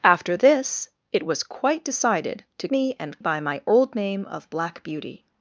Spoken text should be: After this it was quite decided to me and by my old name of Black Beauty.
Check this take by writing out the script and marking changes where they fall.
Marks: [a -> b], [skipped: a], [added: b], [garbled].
After this it was quite decided to me and by my old name of Black Beauty.